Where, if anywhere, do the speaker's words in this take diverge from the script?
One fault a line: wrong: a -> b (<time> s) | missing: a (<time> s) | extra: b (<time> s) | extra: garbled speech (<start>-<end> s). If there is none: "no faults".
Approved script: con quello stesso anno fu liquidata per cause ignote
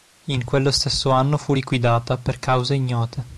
wrong: con -> in (0.2 s)